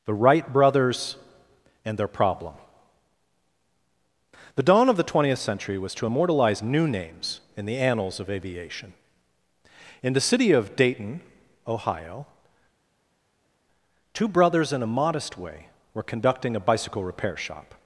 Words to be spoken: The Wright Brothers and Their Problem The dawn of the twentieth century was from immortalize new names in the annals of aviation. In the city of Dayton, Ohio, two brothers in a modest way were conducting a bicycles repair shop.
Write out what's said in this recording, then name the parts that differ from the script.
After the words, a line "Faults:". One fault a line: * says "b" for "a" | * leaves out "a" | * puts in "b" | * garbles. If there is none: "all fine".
The Wright Brothers and Their Problem The dawn of the twentieth century was to immortalize new names in the annals of aviation. In the city of Dayton, Ohio, two brothers in a modest way were conducting a bicycle repair shop.
Faults:
* says "to" for "from"
* says "bicycle" for "bicycles"